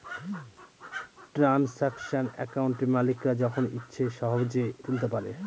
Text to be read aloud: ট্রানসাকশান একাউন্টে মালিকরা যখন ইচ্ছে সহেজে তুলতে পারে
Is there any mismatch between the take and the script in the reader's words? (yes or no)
no